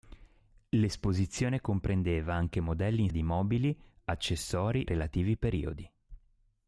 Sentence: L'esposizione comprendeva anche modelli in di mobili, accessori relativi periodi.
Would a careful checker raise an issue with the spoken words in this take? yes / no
no